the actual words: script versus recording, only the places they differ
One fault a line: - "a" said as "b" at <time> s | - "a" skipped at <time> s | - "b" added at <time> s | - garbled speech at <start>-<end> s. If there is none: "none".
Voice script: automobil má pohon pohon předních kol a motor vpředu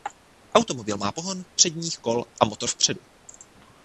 - "pohon" skipped at 1.4 s